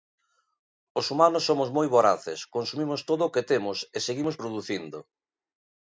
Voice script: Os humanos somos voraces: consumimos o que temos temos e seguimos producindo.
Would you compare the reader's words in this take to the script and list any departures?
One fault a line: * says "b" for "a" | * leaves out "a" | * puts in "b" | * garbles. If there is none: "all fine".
* puts in "moi"
* puts in "todo"
* leaves out "temos"